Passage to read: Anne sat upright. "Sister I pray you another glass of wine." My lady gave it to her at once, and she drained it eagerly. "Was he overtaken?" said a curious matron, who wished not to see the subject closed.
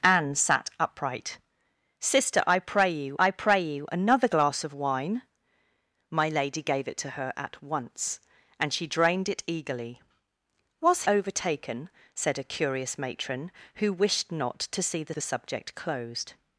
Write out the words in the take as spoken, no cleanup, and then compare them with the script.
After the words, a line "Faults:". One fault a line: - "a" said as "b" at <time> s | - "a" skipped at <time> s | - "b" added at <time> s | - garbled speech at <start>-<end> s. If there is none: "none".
Anne sat upright. "Sister I pray you I pray you another glass of wine." My lady gave it to her at once, and she drained it eagerly. "Was overtaken?" said a curious matron, who wished not to see the the subject closed.
Faults:
- "I pray you" added at 3.2 s
- "he" skipped at 11.0 s
- "the" added at 15.1 s